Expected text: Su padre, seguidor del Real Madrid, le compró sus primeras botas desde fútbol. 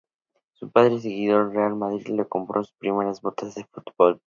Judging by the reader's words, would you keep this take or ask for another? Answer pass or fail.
fail